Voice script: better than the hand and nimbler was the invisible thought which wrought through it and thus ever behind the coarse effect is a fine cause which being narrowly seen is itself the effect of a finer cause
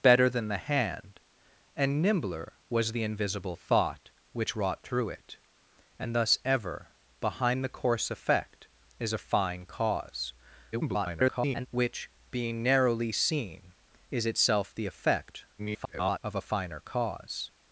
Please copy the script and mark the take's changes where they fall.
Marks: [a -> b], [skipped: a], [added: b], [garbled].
better than the hand and nimbler was the invisible thought which wrought through it and thus ever behind the coarse effect is a fine cause [garbled] which being narrowly seen is itself the effect [garbled] of a finer cause